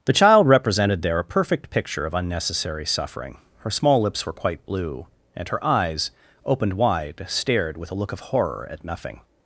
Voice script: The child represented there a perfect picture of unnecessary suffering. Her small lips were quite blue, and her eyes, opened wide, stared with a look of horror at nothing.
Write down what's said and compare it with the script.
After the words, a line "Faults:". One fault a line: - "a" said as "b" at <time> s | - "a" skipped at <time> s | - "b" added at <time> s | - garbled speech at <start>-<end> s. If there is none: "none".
The child represented there a perfect picture of unnecessary suffering. Her small lips were quite blue, and her eyes, opened wide, stared with a look of horror at nothing.
Faults:
none